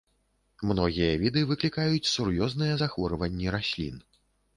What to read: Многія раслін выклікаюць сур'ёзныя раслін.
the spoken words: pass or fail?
fail